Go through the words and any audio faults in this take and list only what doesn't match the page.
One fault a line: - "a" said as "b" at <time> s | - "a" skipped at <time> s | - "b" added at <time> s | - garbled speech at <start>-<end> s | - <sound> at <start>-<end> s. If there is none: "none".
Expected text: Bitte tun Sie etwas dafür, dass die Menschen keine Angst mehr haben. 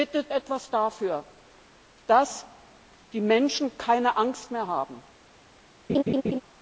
- "tun Sie" skipped at 0.3 s
- laugh at 5.9-6.4 s